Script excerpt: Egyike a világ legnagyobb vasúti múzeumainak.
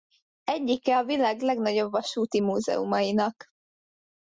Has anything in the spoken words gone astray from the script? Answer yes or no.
no